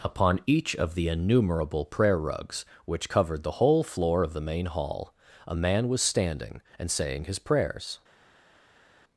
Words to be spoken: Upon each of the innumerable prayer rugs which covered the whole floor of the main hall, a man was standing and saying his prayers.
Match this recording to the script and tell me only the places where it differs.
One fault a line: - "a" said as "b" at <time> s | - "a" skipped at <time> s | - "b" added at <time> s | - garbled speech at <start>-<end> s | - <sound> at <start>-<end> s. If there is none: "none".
none